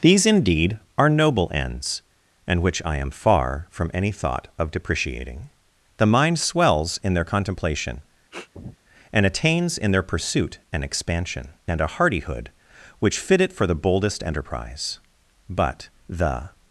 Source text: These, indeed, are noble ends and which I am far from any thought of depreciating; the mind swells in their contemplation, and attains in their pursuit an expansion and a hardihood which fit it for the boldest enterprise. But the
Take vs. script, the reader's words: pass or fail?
pass